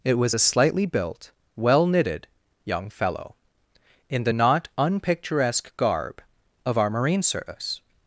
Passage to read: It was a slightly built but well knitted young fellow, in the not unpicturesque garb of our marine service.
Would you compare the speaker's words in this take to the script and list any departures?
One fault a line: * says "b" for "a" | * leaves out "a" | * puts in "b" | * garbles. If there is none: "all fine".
* leaves out "but"